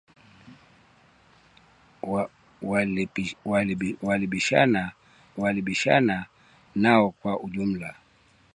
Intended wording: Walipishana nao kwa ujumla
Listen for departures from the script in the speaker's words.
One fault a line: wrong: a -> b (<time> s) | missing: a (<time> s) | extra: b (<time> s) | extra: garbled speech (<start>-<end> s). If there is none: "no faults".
extra: walipishana (5.4 s)